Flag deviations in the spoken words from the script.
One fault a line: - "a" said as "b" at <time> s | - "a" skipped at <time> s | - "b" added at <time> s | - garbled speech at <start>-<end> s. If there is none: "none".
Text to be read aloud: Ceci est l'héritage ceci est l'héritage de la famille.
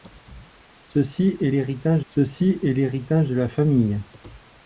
none